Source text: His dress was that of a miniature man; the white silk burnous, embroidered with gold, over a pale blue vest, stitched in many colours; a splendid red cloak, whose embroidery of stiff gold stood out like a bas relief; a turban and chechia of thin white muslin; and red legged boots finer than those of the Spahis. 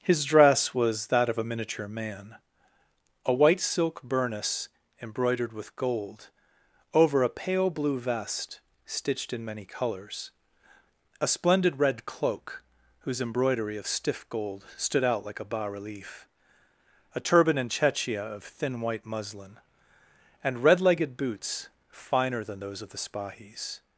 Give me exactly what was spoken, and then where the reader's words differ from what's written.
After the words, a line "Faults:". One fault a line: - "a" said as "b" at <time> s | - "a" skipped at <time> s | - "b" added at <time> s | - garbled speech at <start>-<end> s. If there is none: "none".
His dress was that of a miniature man; a white silk burnous, embroidered with gold, over a pale blue vest, stitched in many colours; a splendid red cloak, whose embroidery of stiff gold stood out like a bas relief; a turban and chechia of thin white muslin; and red legged boots finer than those of the Spahis.
Faults:
- "the" said as "a" at 3.2 s